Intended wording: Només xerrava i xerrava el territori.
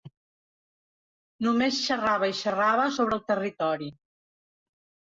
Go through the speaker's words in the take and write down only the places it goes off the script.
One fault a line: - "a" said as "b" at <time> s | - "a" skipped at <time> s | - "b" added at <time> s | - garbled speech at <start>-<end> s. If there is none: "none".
- "sobre" added at 3.0 s